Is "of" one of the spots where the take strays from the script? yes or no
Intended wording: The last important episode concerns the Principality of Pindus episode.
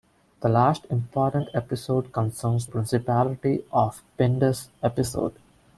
no